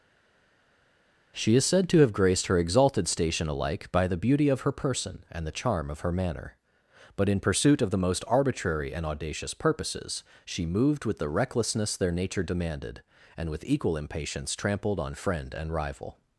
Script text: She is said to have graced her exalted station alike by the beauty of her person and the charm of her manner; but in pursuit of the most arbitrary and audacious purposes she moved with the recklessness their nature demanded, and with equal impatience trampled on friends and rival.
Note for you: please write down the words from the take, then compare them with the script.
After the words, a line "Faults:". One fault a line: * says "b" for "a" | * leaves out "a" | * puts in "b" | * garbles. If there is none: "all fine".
She is said to have graced her exalted station alike by the beauty of her person and the charm of her manner; but in pursuit of the most arbitrary and audacious purposes she moved with the recklessness their nature demanded, and with equal impatience trampled on friend and rival.
Faults:
* says "friend" for "friends"